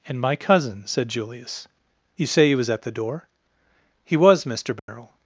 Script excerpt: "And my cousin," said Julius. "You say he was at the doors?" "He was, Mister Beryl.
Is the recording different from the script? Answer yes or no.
yes